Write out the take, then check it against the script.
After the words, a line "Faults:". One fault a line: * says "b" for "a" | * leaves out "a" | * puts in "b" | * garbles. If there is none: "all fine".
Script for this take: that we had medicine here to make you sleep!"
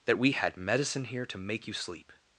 that we had medicine here to make you sleep!"
Faults:
all fine